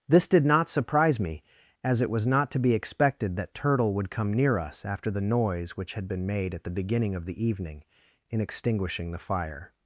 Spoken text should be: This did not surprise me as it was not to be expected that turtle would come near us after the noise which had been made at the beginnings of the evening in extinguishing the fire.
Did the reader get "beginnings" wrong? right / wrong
wrong